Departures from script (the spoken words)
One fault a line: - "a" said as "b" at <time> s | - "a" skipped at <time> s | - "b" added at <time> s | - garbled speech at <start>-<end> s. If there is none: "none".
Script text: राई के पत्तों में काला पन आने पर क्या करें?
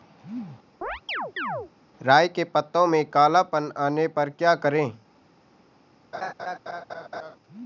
none